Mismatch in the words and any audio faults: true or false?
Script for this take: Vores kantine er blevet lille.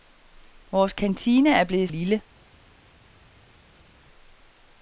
false